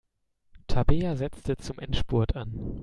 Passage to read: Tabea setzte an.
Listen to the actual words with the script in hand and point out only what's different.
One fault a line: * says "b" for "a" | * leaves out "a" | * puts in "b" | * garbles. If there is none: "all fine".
* puts in "zum Endspurt"